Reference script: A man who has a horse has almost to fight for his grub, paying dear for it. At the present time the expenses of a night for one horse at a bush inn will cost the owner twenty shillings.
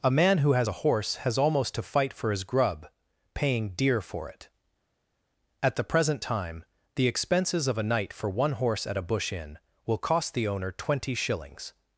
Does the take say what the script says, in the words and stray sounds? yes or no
yes